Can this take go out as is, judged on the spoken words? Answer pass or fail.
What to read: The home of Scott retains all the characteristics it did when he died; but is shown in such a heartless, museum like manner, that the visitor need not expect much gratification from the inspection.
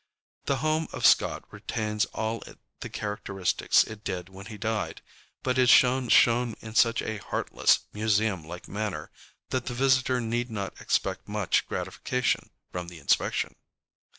fail